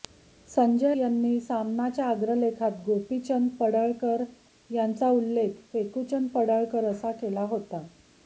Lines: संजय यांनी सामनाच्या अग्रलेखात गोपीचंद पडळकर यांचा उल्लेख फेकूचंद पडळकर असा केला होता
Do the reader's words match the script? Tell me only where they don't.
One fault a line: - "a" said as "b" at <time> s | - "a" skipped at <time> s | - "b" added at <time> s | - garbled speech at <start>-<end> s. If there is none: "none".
none